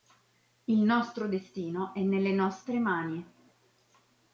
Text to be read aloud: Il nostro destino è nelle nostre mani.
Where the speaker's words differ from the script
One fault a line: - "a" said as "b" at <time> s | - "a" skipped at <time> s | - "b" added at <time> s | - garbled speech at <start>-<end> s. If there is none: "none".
none